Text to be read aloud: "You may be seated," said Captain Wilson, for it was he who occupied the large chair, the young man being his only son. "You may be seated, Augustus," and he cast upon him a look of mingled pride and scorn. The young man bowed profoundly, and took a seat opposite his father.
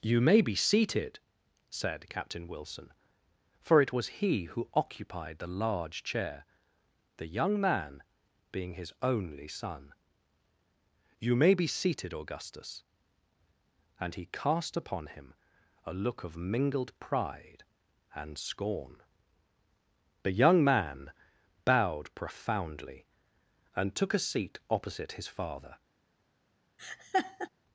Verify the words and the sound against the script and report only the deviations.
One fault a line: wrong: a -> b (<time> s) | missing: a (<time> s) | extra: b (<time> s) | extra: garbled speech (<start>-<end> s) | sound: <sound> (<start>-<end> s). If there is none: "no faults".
sound: laugh (26.8-27.5 s)